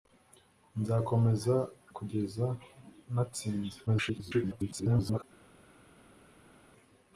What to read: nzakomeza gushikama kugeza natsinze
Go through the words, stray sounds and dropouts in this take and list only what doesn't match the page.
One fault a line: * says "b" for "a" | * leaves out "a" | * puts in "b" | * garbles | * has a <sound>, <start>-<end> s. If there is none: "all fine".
* leaves out "gushikama"
* garbles